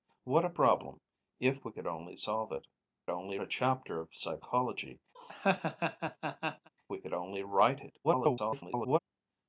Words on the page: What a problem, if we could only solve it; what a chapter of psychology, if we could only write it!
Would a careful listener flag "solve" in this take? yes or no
no